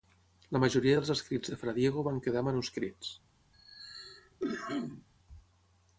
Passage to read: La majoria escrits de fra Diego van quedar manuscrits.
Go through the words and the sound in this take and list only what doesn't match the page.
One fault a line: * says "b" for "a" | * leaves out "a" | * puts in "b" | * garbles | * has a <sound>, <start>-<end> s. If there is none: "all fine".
* puts in "dels"
* has a cough, 3.5-5.1 s